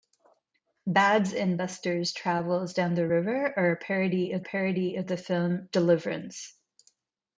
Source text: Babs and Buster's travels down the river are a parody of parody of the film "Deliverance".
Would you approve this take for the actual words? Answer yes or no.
yes